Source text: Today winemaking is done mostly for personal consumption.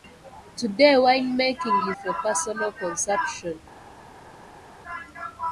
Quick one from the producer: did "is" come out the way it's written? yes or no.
no